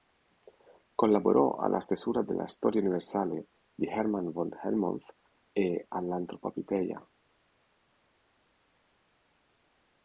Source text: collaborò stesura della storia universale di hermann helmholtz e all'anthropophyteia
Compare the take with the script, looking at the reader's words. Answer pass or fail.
fail